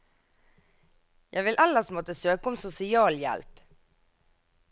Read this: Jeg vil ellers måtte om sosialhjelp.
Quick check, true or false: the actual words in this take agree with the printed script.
false